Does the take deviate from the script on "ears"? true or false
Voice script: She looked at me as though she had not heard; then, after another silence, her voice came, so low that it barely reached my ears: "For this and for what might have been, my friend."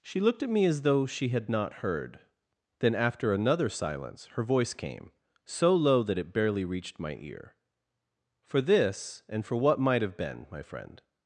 true